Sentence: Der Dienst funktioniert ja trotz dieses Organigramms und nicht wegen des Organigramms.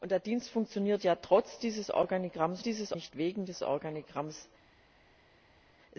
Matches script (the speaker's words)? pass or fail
fail